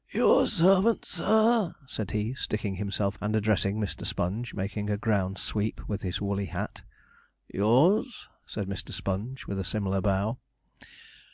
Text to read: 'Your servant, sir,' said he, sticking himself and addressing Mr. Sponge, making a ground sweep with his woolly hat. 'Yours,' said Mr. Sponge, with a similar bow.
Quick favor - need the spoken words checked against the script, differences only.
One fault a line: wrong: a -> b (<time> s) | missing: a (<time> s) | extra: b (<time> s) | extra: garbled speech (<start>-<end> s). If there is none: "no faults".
no faults